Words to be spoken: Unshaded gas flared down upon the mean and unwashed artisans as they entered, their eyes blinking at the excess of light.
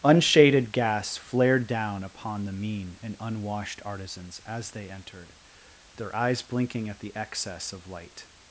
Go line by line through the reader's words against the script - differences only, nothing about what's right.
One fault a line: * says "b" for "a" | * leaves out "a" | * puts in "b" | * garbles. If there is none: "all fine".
all fine